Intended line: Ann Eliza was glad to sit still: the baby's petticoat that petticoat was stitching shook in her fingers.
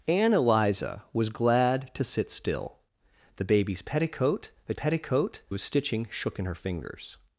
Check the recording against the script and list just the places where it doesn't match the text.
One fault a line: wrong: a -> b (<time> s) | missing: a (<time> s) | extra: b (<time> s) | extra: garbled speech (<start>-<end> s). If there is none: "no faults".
no faults